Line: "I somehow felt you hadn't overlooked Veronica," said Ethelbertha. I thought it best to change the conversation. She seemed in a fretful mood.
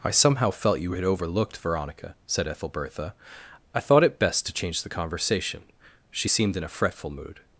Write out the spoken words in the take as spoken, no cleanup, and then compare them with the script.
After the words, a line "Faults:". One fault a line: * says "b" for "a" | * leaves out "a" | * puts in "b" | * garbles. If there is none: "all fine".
"I somehow felt you had overlooked Veronica," said Ethelbertha. I thought it best to change the conversation. She seemed in a fretful mood.
Faults:
* says "had" for "hadn't"